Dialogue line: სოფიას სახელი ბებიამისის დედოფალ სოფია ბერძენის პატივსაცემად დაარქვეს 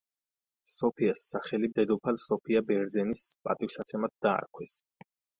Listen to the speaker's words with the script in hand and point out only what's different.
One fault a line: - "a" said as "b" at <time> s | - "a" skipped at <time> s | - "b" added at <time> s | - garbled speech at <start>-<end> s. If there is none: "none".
- "ბებიამისის" skipped at 1.7 s